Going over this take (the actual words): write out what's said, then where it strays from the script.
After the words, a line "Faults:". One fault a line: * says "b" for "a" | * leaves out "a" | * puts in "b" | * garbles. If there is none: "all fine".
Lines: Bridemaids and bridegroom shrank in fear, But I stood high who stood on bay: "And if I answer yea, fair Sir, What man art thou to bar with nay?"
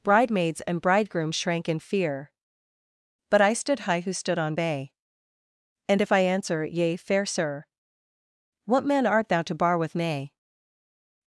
Bridemaids and bridegroom shrank in fear, But I stood high who stood on bay: "And if I answer yea, fair Sir, What man art thou to bar with nay?"
Faults:
all fine